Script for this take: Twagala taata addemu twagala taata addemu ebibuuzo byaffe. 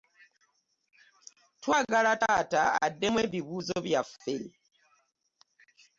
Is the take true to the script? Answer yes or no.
no